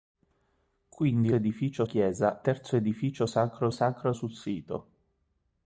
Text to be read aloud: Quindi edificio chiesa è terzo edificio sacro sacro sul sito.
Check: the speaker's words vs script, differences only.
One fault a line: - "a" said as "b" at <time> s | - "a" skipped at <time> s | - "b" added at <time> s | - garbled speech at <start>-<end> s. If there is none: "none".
none